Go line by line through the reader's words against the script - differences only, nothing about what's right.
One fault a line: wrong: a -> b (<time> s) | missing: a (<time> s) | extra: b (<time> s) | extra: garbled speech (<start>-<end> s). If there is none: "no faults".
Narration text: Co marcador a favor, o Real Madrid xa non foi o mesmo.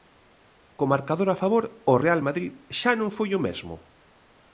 no faults